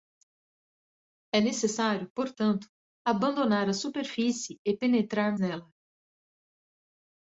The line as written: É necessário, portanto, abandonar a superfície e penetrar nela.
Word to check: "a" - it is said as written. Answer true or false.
true